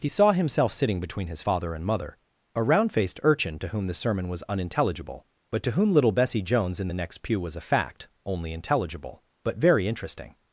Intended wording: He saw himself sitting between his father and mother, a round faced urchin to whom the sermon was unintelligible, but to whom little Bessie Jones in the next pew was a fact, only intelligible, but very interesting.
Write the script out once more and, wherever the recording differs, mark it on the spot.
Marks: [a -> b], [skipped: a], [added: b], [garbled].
He saw himself sitting between his father and mother, a round faced urchin to whom the sermon was unintelligible, but to whom little Bessie Jones in the next pew was a fact, only intelligible, but very interesting.